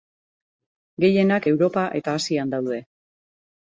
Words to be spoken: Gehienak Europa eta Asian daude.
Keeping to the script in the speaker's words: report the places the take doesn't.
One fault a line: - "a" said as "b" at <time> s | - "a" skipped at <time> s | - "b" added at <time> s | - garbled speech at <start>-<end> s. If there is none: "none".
none